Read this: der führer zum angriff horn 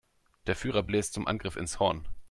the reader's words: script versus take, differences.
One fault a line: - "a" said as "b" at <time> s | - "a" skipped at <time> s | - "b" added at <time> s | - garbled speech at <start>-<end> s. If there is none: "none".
- "bläst" added at 0.8 s
- "ins" added at 1.6 s